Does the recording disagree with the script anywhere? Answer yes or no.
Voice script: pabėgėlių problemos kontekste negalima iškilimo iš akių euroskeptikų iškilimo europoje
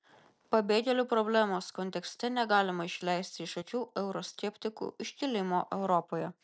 yes